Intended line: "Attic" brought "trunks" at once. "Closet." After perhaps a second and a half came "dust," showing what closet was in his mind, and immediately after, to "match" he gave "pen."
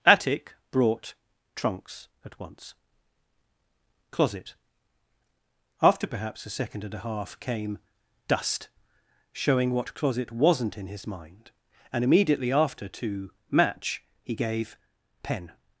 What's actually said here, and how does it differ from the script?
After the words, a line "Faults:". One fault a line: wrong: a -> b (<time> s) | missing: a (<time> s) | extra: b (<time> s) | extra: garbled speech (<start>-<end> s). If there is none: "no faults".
"Attic" brought "trunks" at once. "Closet." After perhaps a second and a half came "dust," showing what closet wasn't in his mind, and immediately after, to "match" he gave "pen."
Faults:
wrong: was -> wasn't (10.3 s)